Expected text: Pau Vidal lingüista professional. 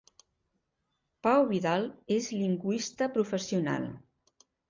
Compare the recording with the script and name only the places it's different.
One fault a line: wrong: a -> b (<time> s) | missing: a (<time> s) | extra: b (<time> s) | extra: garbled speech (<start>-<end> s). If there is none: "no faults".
extra: és (2.2 s)